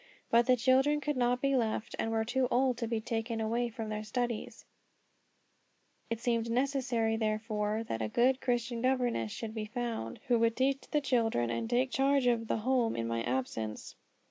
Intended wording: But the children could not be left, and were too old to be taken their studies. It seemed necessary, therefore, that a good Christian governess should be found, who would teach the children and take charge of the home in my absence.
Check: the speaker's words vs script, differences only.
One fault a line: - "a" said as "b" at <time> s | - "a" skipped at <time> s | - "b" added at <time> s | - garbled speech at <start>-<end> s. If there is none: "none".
- "away from" added at 3.4 s